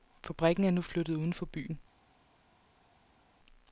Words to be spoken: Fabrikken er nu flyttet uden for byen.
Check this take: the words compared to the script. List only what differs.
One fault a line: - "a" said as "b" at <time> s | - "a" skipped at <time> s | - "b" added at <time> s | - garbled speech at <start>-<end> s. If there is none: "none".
none